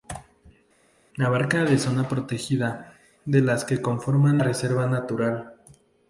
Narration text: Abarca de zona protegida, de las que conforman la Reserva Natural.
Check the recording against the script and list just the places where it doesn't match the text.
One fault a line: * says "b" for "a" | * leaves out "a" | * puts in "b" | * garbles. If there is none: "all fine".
* leaves out "la"